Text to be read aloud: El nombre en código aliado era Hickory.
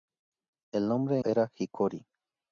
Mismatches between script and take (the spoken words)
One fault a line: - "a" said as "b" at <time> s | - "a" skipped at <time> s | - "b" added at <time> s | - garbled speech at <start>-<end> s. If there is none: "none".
- "en código aliado" skipped at 1.2 s